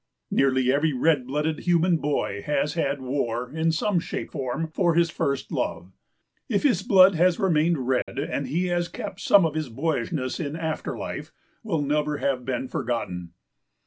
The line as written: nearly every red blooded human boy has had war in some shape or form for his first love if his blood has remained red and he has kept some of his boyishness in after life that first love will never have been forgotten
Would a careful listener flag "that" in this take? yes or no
yes